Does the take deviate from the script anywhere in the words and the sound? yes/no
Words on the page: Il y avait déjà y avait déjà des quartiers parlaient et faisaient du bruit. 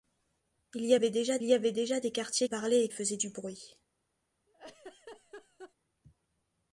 yes